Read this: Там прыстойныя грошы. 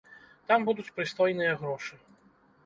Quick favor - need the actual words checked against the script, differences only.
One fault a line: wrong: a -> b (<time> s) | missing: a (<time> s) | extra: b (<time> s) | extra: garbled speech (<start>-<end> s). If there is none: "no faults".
extra: будуць (0.7 s)